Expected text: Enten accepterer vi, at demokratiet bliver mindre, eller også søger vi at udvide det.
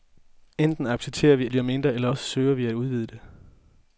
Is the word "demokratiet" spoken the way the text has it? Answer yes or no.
no